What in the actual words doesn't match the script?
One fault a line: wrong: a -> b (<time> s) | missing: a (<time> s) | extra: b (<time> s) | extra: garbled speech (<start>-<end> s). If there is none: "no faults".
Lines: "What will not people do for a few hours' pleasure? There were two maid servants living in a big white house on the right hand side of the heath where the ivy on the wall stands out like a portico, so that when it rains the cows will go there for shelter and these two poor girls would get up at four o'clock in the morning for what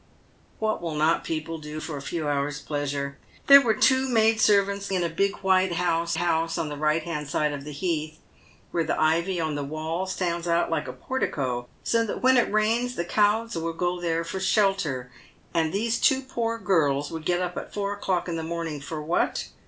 missing: living (4.9 s)
extra: house (6.2 s)